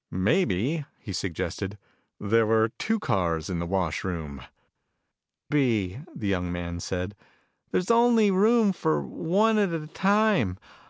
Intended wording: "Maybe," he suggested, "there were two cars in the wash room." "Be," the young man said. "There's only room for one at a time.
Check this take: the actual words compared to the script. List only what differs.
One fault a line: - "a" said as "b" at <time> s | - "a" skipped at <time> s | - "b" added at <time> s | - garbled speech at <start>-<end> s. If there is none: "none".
none